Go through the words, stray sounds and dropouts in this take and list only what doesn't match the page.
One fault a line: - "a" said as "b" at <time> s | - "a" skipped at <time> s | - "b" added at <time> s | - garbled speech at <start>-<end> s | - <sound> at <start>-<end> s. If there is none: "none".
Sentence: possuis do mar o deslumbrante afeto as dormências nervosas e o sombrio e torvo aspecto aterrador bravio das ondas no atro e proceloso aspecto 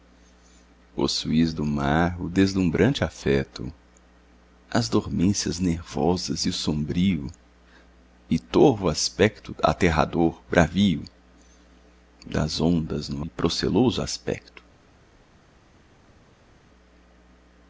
- "atro" skipped at 13.3 s